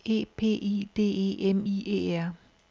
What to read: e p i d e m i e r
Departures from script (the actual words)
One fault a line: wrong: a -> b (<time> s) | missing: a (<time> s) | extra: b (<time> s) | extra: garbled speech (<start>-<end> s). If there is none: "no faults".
no faults